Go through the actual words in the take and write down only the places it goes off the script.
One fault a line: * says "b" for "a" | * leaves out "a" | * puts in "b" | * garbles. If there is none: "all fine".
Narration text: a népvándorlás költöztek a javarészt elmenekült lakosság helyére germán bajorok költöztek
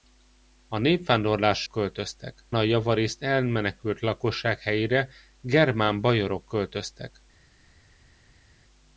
all fine